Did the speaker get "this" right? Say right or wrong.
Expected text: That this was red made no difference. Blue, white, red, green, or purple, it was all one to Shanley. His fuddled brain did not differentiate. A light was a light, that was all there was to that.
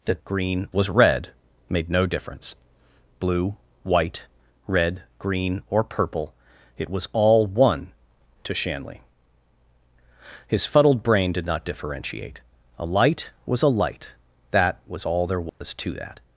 wrong